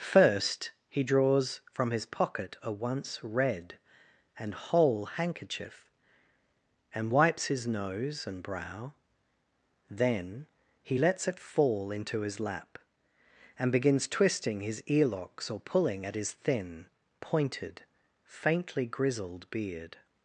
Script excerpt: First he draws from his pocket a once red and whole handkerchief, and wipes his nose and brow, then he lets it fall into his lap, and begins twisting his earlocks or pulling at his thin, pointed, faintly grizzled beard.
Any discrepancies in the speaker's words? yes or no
no